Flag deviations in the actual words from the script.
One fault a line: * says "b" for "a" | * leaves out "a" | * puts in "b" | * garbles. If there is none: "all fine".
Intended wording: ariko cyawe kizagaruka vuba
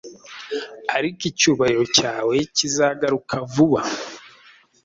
* puts in "icyubahiro"